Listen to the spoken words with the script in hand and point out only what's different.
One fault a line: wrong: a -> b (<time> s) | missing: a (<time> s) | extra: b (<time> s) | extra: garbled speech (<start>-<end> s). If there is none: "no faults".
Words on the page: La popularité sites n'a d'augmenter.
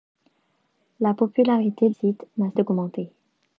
no faults